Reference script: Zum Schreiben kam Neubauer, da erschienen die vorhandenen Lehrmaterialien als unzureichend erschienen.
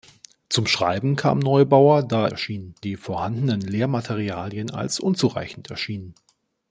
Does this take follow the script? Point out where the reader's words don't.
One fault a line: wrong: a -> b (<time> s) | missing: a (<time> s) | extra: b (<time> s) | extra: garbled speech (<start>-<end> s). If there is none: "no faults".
no faults